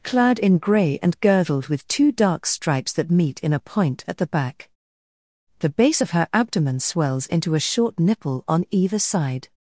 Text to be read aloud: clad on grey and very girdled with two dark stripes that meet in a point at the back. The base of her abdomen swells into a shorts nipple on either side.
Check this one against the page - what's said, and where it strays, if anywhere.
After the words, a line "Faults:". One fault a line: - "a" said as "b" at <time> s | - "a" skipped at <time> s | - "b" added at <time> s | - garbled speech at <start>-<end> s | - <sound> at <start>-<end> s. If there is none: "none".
clad in grey and girdled with two dark stripes that meet in a point at the back. The base of her abdomen swells into a short nipple on either side.
Faults:
- "on" said as "in" at 0.4 s
- "very" skipped at 1.2 s
- "shorts" said as "short" at 7.6 s